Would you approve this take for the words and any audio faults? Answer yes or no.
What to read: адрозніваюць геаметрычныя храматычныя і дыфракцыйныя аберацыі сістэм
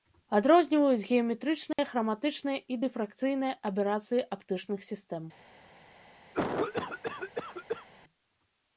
no